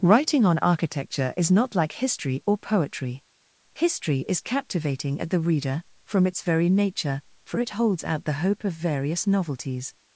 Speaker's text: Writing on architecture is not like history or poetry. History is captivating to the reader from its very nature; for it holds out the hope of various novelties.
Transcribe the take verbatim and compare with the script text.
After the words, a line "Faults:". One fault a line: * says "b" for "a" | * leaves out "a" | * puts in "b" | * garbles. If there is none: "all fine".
Writing on architecture is not like history or poetry. History is captivating at the reader from its very nature; for it holds out the hope of various novelties.
Faults:
* says "at" for "to"